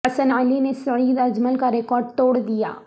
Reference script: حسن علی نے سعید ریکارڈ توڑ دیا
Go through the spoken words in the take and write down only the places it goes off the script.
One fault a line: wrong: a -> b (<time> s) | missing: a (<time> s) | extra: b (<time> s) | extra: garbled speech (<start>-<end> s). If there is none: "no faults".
extra: اجمل کا (1.2 s)